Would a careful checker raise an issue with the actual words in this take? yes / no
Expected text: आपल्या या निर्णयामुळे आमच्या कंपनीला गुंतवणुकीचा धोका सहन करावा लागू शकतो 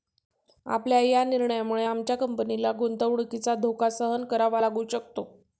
no